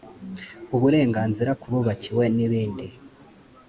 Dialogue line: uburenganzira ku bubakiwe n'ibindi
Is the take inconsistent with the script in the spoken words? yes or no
no